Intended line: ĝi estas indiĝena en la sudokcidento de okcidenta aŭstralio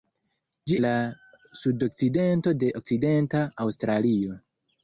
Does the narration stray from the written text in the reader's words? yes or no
yes